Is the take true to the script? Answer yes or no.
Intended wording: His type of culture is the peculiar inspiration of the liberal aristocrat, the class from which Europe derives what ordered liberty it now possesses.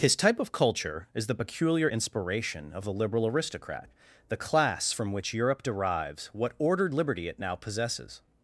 yes